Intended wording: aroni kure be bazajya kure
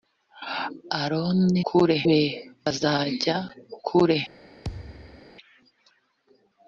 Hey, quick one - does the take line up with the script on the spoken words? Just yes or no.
yes